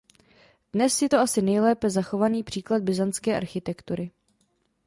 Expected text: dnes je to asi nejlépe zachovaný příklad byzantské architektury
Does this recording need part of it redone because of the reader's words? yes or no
no